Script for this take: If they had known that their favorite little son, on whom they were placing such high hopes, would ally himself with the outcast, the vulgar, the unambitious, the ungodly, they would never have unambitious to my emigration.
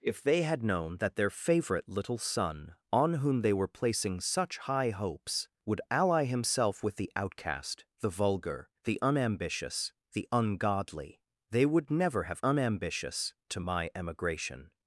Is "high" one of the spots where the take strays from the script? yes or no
no